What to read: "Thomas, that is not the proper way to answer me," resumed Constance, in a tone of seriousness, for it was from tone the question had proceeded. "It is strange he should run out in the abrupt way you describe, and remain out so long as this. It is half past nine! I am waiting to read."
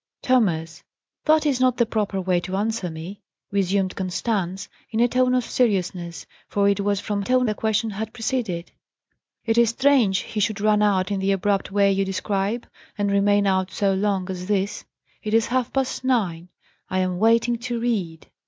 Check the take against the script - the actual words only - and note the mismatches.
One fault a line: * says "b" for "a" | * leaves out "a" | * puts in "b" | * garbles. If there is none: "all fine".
all fine